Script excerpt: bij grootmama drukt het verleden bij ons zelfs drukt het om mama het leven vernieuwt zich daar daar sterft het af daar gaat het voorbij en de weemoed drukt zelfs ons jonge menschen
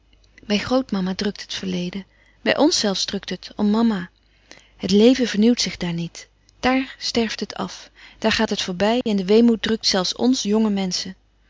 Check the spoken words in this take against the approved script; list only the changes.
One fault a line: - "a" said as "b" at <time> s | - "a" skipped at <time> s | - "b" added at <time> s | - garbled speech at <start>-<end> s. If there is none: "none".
- "niet" added at 5.9 s